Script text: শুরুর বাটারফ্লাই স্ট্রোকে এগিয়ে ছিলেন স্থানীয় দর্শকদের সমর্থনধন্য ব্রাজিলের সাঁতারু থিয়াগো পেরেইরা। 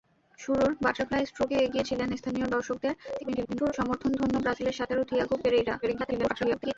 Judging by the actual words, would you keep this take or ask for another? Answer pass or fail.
fail